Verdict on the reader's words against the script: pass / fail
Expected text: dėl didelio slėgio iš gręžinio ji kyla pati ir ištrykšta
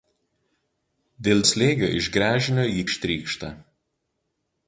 fail